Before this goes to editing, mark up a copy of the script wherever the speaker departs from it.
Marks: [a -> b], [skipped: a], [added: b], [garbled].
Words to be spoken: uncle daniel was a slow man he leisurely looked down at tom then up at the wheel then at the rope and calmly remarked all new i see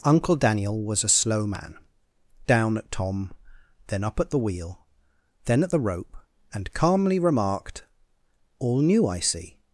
uncle daniel was a slow man [skipped: he leisurely looked] down at tom then up at the wheel then at the rope and calmly remarked all new i see